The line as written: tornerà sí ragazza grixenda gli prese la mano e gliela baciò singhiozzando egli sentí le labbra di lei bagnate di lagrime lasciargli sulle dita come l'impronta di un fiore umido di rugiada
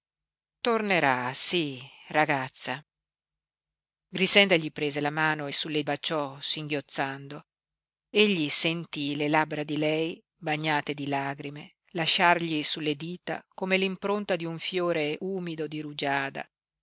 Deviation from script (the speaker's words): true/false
true